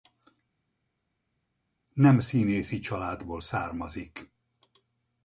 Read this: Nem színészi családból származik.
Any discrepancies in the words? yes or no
no